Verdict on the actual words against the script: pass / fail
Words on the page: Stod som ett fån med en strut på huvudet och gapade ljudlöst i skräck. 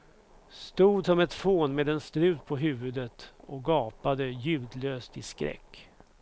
pass